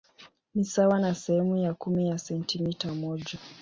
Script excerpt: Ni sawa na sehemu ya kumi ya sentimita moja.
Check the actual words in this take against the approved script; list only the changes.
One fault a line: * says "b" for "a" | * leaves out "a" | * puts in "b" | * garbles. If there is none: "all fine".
all fine